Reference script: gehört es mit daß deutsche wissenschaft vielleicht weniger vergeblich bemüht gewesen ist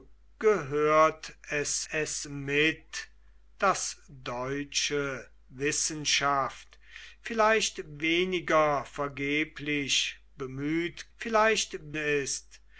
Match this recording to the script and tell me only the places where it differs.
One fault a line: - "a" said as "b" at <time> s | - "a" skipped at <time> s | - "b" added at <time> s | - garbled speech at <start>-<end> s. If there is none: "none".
- "es" added at 1.9 s
- "gewesen" said as "vielleicht" at 11.1 s